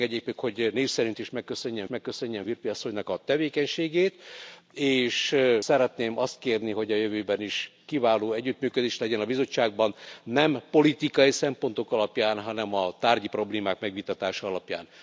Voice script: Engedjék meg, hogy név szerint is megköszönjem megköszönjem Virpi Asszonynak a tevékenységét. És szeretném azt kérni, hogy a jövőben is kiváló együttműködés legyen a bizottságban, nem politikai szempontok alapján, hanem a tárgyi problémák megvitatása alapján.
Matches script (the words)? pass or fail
pass